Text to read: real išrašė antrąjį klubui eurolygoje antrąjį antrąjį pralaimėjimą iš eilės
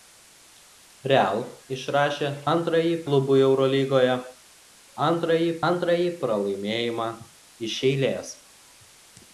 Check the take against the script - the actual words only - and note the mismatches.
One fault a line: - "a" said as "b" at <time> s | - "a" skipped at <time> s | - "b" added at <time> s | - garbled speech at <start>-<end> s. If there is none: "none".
none